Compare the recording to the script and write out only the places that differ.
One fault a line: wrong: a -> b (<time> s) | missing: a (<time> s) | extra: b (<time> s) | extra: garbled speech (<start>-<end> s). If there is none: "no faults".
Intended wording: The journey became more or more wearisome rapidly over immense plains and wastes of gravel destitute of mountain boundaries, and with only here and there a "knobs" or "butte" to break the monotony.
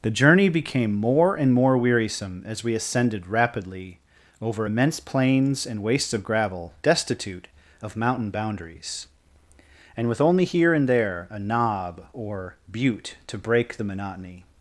wrong: or -> and (1.4 s)
extra: as we ascended (2.5 s)
wrong: knobs -> knob (11.4 s)